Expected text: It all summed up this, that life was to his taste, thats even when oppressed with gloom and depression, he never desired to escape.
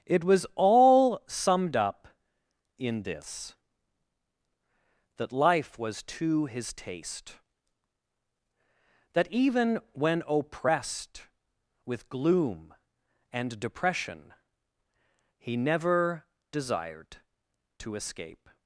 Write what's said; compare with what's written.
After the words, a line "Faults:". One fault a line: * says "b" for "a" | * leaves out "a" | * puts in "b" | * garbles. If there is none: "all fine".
It was all summed up in this, that life was to his taste, that even when oppressed with gloom and depression, he never desired to escape.
Faults:
* puts in "was"
* puts in "in"
* says "that" for "thats"